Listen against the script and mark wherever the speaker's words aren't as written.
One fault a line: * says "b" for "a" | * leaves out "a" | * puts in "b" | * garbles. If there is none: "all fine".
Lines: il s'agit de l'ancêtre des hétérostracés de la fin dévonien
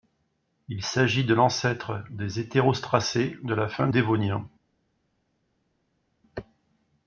all fine